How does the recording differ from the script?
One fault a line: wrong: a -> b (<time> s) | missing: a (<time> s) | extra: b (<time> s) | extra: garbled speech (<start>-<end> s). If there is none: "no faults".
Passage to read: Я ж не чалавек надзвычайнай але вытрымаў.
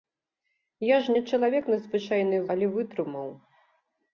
no faults